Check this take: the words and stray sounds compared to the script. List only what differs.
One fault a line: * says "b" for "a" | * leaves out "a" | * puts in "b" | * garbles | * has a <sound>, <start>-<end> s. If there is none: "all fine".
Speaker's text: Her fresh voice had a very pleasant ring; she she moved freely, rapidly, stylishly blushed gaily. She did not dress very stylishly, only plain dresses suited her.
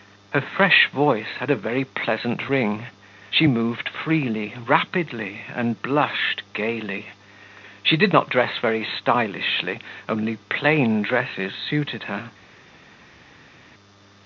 * leaves out "she"
* says "and" for "stylishly"